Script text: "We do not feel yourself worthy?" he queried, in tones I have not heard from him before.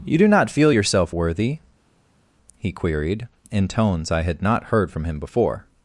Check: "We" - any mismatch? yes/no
yes